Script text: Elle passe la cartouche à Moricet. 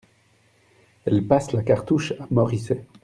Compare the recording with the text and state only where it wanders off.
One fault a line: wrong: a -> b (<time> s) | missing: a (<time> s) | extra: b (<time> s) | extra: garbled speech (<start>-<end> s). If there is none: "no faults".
no faults